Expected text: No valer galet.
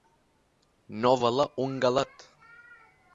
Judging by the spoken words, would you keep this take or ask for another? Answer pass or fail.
fail